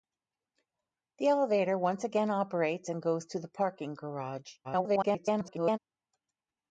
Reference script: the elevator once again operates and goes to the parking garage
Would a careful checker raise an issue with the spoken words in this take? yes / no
yes